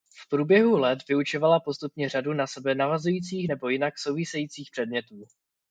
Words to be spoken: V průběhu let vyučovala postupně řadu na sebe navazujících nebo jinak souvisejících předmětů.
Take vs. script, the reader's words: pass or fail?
pass